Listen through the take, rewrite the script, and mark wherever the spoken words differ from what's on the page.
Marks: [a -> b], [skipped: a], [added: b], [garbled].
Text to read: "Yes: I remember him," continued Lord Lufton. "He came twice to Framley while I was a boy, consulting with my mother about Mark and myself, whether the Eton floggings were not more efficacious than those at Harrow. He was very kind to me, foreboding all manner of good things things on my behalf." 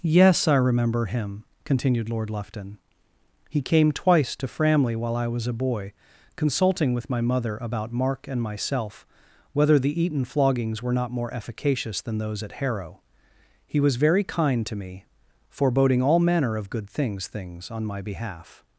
"Yes: I remember him," continued Lord Lufton. "He came twice to Framley while I was a boy, consulting with my mother about Mark and myself, whether the Eton floggings were not more efficacious than those at Harrow. He was very kind to me, foreboding all manner of good things things on my behalf."